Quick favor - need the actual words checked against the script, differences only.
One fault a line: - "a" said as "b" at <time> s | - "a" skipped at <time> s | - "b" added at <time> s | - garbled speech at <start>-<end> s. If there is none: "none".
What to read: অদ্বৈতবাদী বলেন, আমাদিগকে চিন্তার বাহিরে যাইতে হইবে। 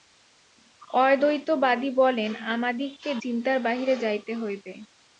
none